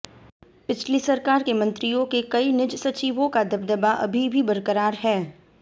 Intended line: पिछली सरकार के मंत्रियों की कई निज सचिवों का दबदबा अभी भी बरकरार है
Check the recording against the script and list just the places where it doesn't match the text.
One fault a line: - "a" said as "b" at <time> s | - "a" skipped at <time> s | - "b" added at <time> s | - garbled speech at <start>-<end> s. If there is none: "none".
- "की" said as "के" at 2.0 s